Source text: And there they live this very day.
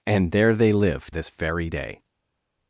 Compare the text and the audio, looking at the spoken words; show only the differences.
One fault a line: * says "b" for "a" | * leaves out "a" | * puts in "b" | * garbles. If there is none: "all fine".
all fine